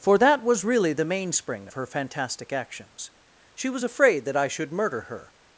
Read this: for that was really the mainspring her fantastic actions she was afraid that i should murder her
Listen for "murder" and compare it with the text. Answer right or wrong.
right